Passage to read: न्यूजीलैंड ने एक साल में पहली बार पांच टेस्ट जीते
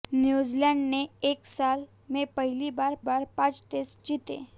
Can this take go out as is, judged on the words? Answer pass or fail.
fail